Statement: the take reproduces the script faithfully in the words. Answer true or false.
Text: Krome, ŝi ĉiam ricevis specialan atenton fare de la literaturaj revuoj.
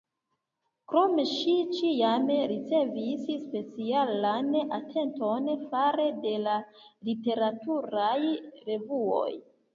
true